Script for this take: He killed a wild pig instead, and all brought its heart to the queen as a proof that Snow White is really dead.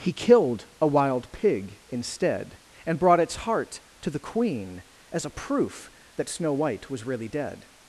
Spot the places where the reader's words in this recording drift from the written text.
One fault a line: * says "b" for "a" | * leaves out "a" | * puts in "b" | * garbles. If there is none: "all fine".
* leaves out "all"
* says "was" for "is"